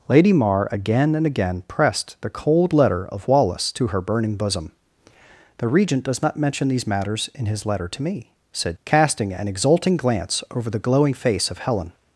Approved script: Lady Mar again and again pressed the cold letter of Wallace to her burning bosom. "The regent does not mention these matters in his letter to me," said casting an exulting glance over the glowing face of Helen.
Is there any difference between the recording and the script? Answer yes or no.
no